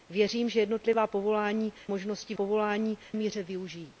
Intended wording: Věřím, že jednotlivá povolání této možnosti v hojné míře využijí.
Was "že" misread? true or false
false